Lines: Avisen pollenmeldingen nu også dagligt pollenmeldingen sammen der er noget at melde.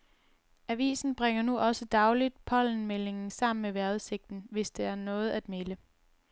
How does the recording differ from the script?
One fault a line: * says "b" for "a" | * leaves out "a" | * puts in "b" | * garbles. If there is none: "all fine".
* says "bringer" for "pollenmeldingen"
* puts in "med vejrudsigten hvis"